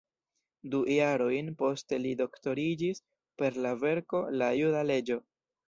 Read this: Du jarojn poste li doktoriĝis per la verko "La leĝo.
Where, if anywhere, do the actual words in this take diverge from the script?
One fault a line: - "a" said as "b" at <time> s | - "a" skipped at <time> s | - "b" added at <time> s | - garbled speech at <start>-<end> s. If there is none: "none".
- "juda" added at 4.6 s